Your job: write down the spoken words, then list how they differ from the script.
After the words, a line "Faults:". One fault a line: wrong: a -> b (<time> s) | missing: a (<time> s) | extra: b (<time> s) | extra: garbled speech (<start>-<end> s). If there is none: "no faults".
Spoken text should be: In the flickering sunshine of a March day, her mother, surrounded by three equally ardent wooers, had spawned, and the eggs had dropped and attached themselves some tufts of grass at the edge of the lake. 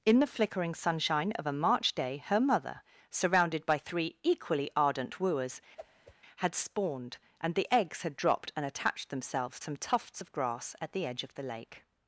In the flickering sunshine of a March day, her mother, surrounded by three equally ardent wooers, had spawned, and the eggs had dropped and attached themselves some tufts of grass at the edge of the lake.
Faults:
no faults